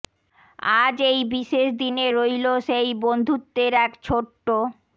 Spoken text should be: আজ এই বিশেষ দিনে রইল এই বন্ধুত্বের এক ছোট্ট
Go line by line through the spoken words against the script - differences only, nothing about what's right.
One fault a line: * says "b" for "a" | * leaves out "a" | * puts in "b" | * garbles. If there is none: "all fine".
* says "সেই" for "এই"